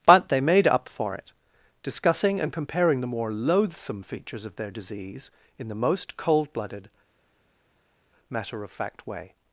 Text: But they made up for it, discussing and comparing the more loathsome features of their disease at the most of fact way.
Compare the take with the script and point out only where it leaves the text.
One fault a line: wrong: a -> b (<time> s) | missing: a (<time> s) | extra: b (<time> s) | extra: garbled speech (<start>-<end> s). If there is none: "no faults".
wrong: at -> in (5.6 s)
extra: cold blooded matter (6.2 s)